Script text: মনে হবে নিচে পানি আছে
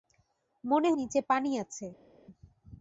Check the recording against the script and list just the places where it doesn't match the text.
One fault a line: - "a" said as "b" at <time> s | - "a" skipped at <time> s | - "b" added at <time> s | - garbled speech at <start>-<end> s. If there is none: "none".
- "হবে" skipped at 0.9 s